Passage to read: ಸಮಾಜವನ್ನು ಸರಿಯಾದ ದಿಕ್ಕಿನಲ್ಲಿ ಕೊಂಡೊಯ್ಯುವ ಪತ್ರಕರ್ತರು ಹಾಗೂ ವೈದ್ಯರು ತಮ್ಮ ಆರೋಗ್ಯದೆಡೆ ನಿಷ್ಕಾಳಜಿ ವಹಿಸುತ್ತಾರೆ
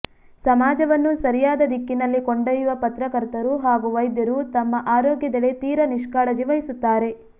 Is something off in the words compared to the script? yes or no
yes